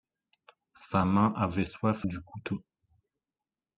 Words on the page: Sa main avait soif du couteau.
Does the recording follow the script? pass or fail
pass